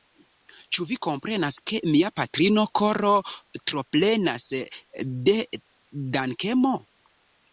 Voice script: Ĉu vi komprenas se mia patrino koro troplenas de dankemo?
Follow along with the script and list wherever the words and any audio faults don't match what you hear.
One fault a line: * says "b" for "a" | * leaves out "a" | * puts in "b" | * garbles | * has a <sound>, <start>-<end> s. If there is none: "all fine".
* says "ke" for "se"